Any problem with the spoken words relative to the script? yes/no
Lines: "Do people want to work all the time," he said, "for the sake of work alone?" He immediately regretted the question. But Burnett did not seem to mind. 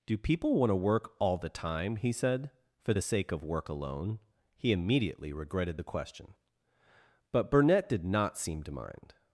no